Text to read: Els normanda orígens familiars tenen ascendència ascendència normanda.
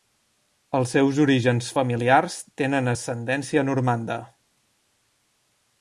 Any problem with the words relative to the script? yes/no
yes